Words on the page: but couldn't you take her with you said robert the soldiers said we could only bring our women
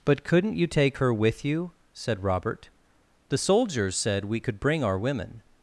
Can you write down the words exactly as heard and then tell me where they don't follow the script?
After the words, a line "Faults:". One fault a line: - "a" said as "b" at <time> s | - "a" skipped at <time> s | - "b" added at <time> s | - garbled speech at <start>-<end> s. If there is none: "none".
but couldn't you take her with you said robert the soldiers said we could bring our women
Faults:
- "only" skipped at 4.6 s